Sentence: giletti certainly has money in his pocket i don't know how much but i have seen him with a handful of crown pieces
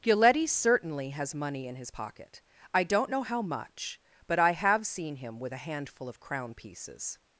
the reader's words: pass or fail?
pass